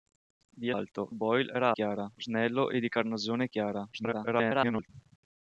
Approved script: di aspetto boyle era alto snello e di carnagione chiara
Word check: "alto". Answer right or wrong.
wrong